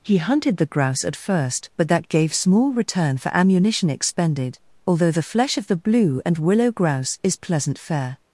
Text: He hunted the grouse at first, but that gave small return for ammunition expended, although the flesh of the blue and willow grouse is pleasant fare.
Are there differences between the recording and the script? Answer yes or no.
no